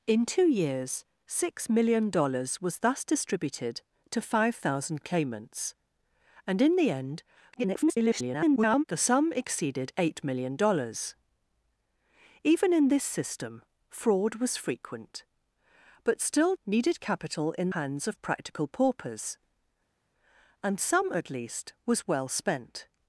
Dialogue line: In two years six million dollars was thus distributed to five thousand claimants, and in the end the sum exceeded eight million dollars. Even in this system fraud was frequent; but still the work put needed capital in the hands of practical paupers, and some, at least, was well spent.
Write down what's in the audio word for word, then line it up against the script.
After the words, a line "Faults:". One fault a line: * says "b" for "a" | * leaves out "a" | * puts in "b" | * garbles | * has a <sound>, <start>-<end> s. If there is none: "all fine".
In two years six million dollars was thus distributed to five thousand claimants, and in the end [garbled] the sum exceeded eight million dollars. Even in this system fraud was frequent; but still needed capital in hands of practical paupers, and some, at least, was well spent.
Faults:
* garbles
* leaves out "the work put"
* leaves out "the"